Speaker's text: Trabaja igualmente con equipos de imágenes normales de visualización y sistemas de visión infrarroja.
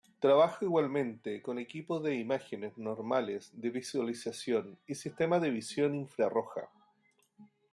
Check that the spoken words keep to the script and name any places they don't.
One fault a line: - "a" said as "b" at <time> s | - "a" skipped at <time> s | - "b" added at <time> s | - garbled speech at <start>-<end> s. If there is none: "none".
none